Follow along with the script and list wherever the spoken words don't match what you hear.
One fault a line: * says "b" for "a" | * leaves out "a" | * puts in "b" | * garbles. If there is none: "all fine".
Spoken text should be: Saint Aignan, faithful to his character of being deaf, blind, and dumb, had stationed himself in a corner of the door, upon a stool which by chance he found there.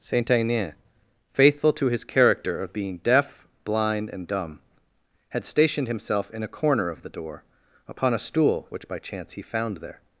all fine